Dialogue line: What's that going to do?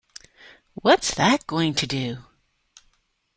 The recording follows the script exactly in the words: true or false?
true